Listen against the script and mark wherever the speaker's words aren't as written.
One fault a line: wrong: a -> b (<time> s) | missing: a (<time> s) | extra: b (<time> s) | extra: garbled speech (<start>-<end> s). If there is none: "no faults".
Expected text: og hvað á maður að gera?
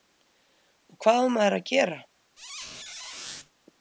no faults